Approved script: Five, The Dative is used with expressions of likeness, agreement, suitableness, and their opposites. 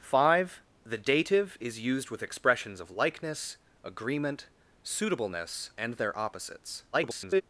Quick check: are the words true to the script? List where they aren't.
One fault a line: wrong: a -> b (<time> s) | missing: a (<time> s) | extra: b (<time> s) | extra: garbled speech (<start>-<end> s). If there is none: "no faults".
extra: garbled speech (6.9-7.4 s)